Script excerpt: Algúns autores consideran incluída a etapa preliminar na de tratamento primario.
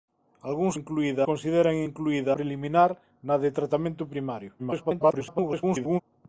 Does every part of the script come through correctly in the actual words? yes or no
no